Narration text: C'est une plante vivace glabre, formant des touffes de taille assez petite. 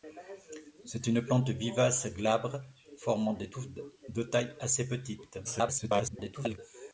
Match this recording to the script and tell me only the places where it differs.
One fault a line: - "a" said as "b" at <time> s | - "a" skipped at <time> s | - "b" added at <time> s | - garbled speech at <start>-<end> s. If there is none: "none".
- garbled speech at 5.4-6.6 s